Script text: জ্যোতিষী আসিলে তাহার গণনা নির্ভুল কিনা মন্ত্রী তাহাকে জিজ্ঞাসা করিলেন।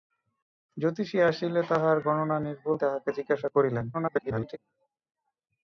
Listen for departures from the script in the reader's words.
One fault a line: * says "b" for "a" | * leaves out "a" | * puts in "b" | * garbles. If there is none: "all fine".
* leaves out "কিনা মন্ত্রী"
* garbles